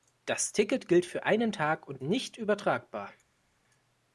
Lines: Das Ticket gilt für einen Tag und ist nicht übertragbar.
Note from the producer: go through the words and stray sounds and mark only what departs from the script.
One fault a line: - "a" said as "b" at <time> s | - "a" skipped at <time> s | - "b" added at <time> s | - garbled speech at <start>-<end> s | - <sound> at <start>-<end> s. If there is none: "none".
- "ist" skipped at 2.0 s